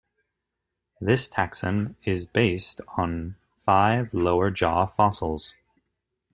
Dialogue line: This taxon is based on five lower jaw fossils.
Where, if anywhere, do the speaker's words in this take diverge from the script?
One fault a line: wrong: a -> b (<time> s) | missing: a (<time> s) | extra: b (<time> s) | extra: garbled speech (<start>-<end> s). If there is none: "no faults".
no faults